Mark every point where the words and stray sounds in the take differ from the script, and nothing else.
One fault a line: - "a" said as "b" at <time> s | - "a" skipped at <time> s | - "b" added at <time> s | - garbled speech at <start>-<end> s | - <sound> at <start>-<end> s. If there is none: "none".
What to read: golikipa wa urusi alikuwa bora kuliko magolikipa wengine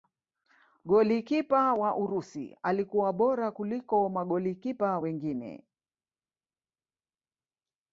none